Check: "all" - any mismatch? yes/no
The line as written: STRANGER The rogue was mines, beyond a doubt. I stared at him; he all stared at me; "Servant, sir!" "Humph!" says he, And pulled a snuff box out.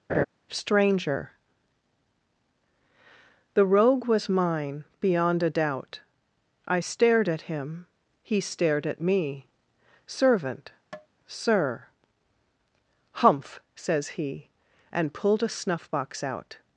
yes